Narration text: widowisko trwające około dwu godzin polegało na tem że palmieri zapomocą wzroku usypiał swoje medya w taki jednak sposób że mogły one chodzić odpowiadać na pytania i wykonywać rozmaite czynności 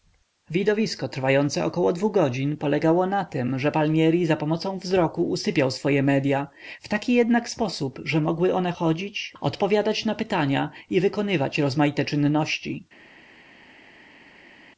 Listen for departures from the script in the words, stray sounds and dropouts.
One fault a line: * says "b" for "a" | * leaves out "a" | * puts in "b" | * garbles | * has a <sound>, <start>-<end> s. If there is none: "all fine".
all fine